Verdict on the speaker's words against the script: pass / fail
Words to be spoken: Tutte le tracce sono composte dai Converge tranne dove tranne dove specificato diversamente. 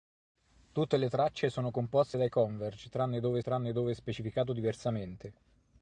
pass